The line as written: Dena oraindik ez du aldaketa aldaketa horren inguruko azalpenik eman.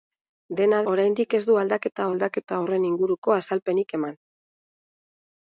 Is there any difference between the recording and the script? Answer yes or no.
no